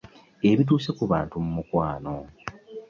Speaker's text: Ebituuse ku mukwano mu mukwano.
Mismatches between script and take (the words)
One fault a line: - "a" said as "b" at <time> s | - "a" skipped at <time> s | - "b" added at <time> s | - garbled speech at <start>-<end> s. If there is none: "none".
- "mukwano" said as "bantu" at 1.1 s